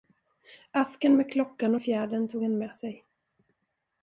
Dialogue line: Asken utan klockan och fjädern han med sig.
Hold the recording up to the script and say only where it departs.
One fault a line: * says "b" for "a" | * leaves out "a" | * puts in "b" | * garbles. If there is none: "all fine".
* says "med" for "utan"
* puts in "tog"